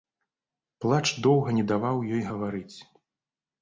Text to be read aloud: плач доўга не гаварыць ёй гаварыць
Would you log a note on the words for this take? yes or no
yes